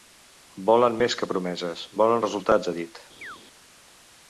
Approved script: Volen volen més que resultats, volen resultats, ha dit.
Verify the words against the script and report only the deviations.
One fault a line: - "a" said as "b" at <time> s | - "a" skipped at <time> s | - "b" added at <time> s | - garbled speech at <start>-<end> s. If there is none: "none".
- "volen" skipped at 0.9 s
- "resultats" said as "promeses" at 1.3 s